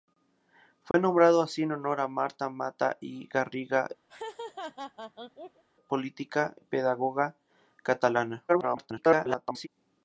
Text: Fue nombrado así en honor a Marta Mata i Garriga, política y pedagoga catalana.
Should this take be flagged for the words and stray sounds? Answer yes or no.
yes